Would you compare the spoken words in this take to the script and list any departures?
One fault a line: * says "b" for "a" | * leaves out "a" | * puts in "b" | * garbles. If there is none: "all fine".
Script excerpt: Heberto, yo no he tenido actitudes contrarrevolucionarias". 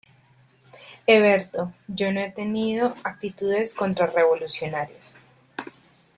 all fine